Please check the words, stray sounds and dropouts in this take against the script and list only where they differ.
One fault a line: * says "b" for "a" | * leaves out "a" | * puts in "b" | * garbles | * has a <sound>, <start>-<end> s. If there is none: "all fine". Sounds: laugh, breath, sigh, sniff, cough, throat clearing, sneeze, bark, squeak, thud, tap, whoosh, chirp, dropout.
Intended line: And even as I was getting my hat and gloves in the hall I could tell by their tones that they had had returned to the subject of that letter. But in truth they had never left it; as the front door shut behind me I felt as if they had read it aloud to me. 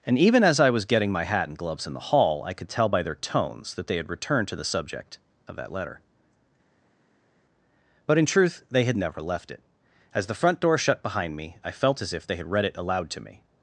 * leaves out "had"